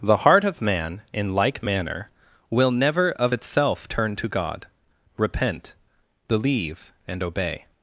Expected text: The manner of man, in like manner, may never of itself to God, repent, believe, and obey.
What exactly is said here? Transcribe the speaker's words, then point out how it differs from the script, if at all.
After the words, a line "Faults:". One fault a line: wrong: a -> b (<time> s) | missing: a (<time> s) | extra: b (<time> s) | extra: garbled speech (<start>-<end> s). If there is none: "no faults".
The heart of man, in like manner, will never of itself turn to God, repent, believe, and obey.
Faults:
wrong: manner -> heart (0.2 s)
wrong: may -> will (2.5 s)
extra: turn (3.9 s)